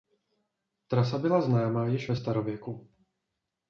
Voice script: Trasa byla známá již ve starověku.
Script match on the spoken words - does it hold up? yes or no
yes